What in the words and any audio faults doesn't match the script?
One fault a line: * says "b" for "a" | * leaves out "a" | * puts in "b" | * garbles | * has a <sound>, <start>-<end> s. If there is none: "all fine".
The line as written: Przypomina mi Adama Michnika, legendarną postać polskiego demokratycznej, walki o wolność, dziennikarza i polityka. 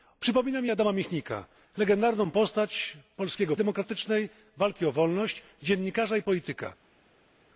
all fine